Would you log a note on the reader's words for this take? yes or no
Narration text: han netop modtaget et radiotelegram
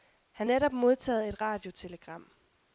no